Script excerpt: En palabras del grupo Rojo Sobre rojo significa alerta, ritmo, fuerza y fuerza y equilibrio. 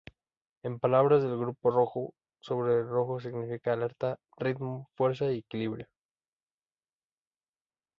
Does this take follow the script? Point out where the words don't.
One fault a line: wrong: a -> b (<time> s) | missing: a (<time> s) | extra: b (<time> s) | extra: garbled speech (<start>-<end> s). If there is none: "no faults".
missing: fuerza y (5.4 s)